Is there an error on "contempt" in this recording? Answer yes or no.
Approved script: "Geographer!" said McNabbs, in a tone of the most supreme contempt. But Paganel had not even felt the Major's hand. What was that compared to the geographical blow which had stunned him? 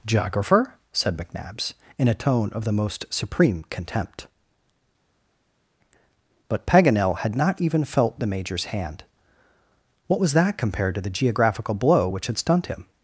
no